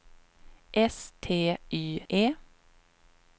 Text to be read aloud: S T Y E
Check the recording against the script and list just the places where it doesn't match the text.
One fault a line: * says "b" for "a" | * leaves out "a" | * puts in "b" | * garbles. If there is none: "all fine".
all fine